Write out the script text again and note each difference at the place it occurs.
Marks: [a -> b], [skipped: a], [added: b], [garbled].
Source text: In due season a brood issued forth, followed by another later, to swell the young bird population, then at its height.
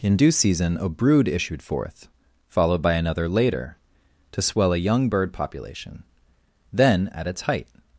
In due season a brood issued forth, followed by another later, to swell [the -> a] young bird population, then at its height.